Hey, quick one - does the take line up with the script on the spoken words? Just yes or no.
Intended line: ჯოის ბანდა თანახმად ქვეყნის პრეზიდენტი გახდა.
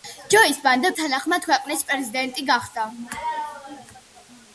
yes